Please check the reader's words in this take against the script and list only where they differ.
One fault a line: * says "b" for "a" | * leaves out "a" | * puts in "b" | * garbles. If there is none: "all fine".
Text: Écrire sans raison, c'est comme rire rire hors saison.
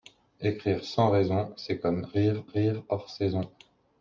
all fine